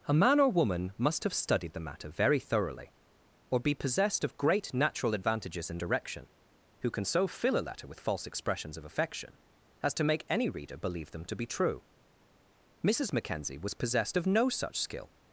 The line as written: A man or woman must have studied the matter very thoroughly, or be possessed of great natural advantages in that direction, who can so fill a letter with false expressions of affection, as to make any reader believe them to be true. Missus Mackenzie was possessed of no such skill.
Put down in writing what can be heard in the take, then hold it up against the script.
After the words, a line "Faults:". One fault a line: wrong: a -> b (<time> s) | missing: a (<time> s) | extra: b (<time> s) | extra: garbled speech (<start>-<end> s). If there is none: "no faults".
A man or woman must have studied the matter very thoroughly, or be possessed of great natural advantages in direction, who can so fill a letter with false expressions of affection, as to make any reader believe them to be true. Missus Mackenzie was possessed of no such skill.
Faults:
missing: that (5.8 s)